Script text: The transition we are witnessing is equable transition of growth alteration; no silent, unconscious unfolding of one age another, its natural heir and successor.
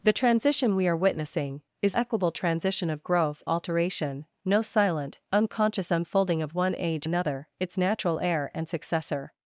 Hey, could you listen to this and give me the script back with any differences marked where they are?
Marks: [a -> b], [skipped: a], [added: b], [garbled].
The transition we are witnessing is equable transition of growth alteration; no silent, unconscious unfolding of one age another, its natural heir and successor.